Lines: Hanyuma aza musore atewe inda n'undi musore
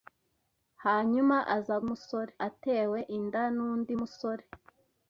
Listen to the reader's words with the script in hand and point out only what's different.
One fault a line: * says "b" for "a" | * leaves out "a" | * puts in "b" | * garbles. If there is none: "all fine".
all fine